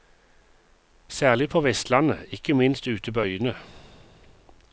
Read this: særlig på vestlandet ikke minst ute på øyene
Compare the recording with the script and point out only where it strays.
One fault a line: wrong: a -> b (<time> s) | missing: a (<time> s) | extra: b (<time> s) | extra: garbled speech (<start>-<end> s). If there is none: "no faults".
no faults